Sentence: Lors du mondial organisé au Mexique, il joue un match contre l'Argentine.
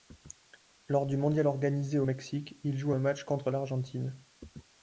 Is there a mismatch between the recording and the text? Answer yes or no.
no